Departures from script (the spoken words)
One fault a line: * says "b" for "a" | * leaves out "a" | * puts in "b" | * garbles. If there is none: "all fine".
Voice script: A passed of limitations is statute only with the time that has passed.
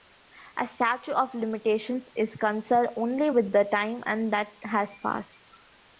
* says "statute" for "passed"
* says "concerned" for "statute"